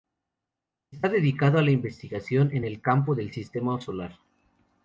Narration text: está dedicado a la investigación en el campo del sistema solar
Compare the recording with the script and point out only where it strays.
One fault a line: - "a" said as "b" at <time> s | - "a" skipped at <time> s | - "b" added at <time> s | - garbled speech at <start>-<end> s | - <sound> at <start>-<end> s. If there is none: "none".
none